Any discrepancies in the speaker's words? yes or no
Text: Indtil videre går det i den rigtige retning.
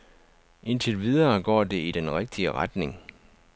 no